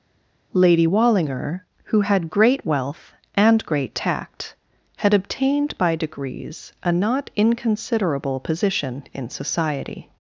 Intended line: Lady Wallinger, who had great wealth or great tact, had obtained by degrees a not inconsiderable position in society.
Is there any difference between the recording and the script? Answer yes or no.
yes